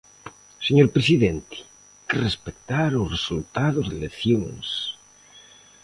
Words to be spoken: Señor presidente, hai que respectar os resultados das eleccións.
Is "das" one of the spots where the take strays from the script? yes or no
yes